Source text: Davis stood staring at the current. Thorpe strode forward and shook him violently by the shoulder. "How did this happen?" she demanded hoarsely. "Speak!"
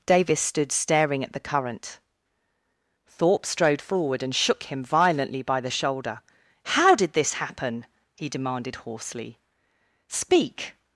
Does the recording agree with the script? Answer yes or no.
no